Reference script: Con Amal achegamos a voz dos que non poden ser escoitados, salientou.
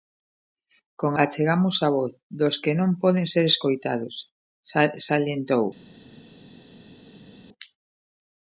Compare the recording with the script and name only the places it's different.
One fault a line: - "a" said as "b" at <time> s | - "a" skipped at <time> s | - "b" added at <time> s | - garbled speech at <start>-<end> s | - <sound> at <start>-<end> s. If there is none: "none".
- "Amal" skipped at 1.1 s